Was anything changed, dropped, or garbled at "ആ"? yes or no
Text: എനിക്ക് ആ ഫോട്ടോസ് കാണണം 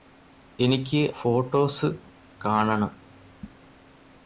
yes